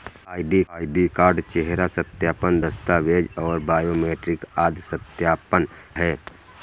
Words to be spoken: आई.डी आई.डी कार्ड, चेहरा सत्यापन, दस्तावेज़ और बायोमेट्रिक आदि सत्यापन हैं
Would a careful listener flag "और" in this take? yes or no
no